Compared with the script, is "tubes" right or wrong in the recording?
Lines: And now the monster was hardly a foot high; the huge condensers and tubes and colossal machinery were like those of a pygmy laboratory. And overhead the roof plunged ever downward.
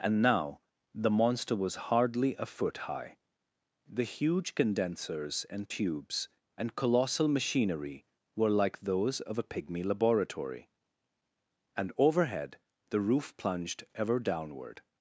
right